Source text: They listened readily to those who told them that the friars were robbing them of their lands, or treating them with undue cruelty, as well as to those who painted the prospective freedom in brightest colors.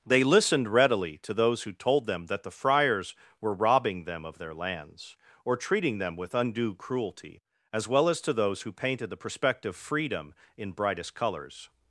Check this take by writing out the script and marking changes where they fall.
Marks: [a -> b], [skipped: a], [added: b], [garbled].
They listened readily to those who told them that the friars were robbing them of their lands, or treating them with undue cruelty, as well as to those who painted the prospective freedom in brightest colors.